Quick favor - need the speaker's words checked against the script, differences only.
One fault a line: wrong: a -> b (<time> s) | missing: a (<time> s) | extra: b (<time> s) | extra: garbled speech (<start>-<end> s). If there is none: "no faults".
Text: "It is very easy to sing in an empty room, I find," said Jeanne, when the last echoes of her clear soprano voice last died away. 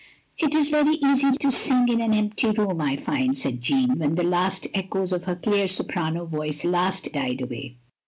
no faults